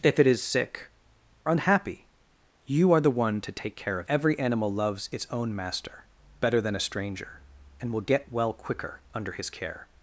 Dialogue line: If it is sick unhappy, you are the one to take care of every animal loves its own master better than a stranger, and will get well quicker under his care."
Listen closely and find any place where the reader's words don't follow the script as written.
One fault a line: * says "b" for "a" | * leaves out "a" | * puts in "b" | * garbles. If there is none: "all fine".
all fine